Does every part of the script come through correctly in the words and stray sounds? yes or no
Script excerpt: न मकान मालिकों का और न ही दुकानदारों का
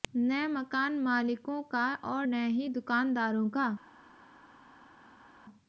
yes